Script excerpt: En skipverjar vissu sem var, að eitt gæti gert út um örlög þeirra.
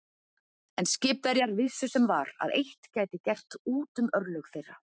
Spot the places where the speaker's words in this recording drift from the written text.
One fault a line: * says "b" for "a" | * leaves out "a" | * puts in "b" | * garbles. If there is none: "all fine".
all fine